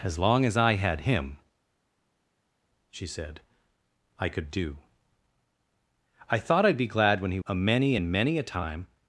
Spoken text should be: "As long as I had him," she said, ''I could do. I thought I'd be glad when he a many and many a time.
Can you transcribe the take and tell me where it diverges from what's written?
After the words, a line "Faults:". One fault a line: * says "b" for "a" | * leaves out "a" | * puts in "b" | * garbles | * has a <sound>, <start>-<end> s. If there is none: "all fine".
"As long as I had him," she said, ''I could do. I thought I'd be glad when he a many and many a time.
Faults:
all fine